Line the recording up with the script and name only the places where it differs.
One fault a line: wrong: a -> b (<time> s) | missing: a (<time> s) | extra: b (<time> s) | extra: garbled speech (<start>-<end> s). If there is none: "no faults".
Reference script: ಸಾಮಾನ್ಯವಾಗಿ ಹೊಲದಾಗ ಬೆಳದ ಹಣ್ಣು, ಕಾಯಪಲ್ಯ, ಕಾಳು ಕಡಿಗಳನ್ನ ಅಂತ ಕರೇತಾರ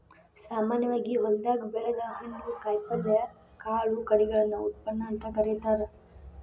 extra: ಉತ್ಪನ್ನ (4.7 s)